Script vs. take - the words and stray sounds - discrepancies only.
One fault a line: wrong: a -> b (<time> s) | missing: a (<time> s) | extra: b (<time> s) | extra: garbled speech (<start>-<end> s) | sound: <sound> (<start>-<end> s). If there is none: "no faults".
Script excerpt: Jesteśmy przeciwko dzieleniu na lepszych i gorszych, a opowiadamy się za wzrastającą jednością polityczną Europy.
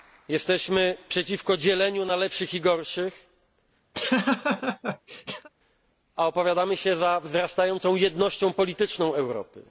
sound: laugh (3.9-5.5 s)